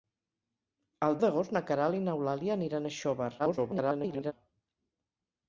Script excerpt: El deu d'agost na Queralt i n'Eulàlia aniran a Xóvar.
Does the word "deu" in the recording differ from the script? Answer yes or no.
yes